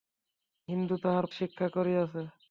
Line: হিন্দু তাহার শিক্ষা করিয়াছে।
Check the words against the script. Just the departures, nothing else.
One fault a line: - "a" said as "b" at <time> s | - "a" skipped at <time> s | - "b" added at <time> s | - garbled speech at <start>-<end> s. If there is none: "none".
none